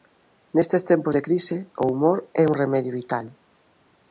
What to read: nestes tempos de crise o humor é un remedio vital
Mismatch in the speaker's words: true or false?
false